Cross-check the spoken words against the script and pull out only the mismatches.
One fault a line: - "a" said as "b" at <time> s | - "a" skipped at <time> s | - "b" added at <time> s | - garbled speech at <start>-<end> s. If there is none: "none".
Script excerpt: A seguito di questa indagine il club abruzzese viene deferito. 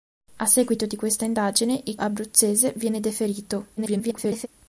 - "club" skipped at 1.9 s
- garbled speech at 3.8-4.5 s